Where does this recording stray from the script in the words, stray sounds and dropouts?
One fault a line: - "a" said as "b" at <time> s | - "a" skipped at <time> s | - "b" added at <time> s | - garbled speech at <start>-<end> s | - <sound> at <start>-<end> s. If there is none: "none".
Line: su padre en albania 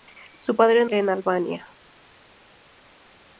none